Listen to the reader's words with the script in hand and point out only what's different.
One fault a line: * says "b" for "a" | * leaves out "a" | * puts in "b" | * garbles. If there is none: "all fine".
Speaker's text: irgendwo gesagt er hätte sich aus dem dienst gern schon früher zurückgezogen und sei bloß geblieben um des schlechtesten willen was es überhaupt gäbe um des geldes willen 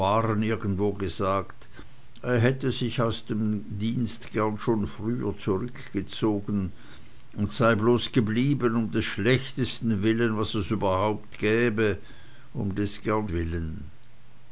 * says "gern" for "geldes"